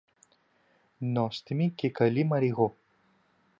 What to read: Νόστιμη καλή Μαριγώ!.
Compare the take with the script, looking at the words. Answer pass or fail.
fail